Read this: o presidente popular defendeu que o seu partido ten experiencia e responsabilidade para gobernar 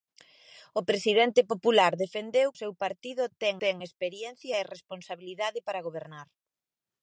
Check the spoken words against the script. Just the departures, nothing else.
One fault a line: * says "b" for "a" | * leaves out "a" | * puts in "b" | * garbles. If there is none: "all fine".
* leaves out "que"
* puts in "ten"